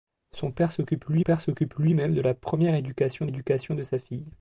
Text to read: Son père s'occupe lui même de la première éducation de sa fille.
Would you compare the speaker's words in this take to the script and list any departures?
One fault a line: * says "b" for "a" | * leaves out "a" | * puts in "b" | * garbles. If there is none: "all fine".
* puts in "père s'occupe lui"
* puts in "éducation"